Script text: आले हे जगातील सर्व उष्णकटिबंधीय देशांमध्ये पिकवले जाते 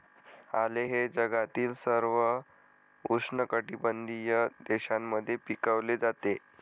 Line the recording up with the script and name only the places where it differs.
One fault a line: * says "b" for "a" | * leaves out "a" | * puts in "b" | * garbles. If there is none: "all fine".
all fine